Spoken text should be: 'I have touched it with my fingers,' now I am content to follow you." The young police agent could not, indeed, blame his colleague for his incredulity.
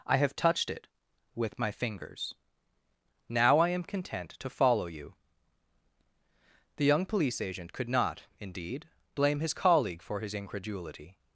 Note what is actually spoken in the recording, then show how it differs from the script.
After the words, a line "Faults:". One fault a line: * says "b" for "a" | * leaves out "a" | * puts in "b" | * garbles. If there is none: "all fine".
'I have touched it with my fingers,' now I am content to follow you." The young police agent could not, indeed, blame his colleague for his incredulity.
Faults:
all fine